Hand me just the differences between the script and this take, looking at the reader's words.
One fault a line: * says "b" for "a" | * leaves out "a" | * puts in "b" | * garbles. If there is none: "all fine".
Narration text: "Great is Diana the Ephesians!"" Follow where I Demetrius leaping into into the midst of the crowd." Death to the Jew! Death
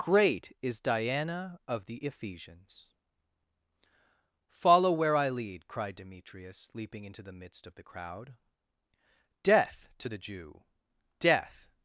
* puts in "of"
* puts in "lead cried"
* leaves out "into"